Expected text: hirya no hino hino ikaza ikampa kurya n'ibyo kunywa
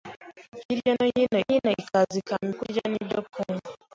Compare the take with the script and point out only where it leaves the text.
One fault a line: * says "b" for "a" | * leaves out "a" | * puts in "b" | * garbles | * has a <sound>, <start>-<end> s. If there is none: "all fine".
all fine